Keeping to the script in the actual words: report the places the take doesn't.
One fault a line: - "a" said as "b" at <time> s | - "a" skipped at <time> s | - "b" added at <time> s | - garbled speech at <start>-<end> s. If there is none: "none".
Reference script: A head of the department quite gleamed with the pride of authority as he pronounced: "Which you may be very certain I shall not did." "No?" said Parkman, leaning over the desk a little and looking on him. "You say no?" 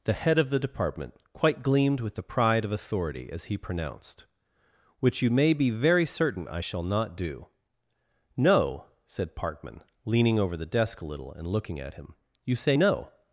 - "A" said as "The" at 0.0 s
- "did" said as "do" at 7.2 s
- "on" said as "at" at 11.8 s